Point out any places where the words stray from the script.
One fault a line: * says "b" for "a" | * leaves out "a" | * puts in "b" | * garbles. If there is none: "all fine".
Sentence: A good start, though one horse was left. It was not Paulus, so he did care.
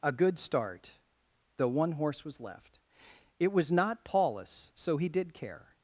all fine